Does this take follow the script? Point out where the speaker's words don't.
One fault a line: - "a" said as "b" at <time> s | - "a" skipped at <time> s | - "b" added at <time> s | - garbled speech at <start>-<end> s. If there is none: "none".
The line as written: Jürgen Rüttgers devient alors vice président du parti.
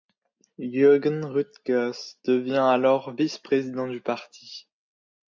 none